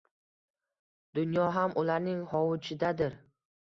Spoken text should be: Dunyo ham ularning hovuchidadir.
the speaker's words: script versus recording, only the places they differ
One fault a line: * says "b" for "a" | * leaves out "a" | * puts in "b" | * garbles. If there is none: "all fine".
all fine